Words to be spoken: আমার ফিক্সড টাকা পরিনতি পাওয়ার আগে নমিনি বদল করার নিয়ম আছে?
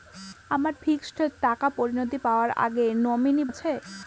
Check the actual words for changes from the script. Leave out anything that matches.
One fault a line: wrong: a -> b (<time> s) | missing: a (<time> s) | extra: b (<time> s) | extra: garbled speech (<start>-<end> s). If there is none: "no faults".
missing: বদল করার নিয়ম (3.4 s)